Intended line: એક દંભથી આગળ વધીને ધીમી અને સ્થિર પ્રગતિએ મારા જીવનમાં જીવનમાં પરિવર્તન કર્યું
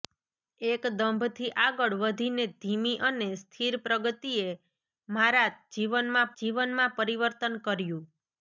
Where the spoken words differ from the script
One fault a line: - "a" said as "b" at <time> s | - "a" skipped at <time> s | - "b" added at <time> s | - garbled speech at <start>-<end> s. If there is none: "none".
none